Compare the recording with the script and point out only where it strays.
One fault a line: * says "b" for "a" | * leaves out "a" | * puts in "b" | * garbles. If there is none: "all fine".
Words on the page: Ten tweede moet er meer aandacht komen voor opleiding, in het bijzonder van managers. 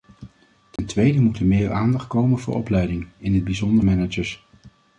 * leaves out "van"